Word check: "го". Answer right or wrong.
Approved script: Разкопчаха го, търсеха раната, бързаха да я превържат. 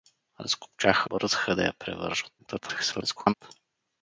wrong